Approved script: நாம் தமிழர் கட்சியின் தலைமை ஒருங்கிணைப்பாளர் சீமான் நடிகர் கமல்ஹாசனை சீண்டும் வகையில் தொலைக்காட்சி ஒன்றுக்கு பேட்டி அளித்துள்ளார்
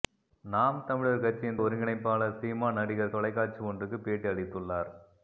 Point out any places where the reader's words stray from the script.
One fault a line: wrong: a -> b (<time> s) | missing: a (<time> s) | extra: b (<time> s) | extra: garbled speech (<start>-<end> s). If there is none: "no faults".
missing: தலைமை (1.6 s)
missing: கமல்ஹாசனை சீண்டும் வகையில் (3.1 s)